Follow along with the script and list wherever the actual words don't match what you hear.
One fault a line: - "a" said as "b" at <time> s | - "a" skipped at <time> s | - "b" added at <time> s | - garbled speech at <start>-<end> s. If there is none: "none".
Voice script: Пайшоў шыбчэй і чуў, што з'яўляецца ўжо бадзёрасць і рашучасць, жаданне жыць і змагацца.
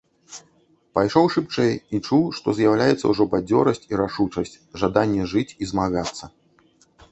none